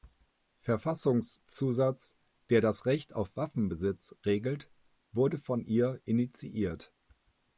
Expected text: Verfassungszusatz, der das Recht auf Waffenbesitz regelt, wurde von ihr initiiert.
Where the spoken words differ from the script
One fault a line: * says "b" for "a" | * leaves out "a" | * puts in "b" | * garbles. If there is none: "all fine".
all fine